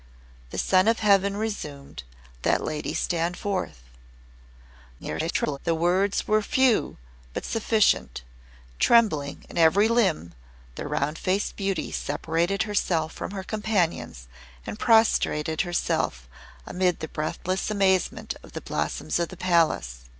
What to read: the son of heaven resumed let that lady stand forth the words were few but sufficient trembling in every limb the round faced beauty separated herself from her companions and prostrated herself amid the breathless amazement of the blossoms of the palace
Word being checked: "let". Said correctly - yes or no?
no